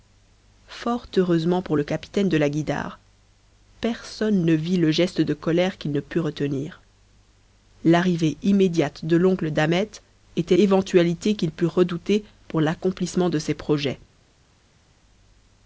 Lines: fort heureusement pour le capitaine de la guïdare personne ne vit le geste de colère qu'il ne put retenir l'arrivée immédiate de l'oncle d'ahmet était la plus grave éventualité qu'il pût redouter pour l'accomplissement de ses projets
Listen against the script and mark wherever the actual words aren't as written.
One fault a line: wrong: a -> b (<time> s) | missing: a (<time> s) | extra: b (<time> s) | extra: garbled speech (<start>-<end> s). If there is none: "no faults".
missing: la plus grave (10.6 s)